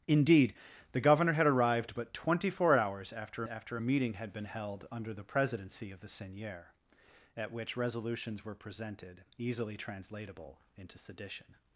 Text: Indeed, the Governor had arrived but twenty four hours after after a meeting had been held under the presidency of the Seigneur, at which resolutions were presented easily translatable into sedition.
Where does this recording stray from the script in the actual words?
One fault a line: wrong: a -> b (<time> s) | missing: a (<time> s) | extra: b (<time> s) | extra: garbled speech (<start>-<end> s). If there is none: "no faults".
no faults